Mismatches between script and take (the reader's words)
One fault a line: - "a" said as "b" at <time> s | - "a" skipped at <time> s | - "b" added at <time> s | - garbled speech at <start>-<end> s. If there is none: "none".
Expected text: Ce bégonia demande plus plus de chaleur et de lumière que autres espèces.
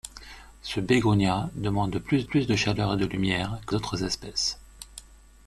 none